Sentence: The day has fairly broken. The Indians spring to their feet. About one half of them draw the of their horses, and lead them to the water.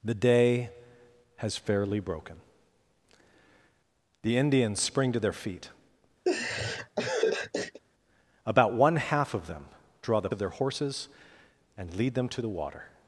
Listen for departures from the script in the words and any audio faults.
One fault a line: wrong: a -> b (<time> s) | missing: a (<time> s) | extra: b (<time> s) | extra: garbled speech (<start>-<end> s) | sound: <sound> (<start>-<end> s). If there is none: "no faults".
sound: laugh (6.3-7.8 s)